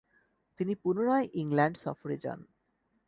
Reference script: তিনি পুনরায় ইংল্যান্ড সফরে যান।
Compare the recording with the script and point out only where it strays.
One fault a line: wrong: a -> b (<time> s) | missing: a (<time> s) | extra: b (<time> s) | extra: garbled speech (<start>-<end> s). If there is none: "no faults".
no faults